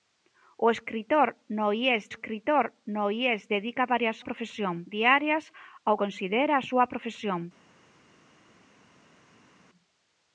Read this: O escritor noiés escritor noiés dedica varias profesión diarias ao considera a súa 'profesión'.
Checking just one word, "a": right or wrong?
right